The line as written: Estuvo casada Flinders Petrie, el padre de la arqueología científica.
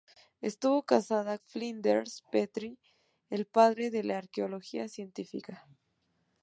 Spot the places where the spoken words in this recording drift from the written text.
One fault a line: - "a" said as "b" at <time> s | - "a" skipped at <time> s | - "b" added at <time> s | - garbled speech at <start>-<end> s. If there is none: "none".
none